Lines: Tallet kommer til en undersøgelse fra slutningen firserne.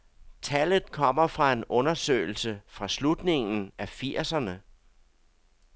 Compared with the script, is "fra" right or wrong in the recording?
right